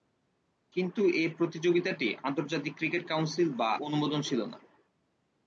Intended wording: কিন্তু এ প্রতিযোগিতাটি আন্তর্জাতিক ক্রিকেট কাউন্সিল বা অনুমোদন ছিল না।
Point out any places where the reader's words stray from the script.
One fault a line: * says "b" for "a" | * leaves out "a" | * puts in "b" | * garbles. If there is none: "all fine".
all fine